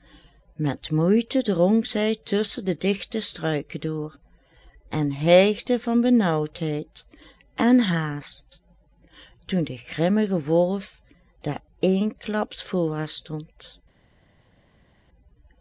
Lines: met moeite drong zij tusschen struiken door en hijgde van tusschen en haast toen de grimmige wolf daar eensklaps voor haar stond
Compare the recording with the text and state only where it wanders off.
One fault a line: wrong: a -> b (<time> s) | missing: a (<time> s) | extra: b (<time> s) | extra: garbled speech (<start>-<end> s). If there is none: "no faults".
extra: de digte (2.6 s)
wrong: tusschen -> benaauwdheid (6.0 s)